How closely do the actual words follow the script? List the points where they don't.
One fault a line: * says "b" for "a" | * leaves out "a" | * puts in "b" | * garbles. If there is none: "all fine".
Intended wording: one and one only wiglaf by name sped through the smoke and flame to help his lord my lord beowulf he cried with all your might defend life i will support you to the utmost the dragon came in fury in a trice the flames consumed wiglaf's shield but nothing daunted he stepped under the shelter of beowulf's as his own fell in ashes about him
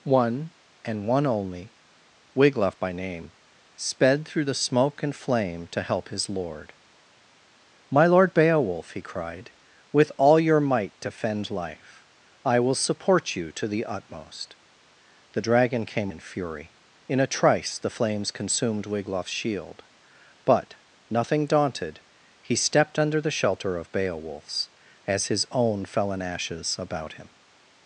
all fine